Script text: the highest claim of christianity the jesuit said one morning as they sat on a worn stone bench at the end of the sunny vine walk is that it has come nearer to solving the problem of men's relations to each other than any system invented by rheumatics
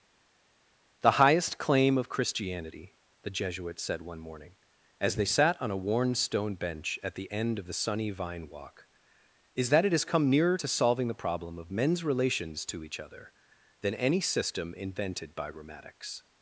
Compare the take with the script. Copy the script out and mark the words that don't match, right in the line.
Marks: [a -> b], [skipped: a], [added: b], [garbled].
the highest claim of christianity the jesuit said one morning as they sat on a worn stone bench at the end of the sunny vine walk is that it has come nearer to solving the problem of men's relations to each other than any system invented by rheumatics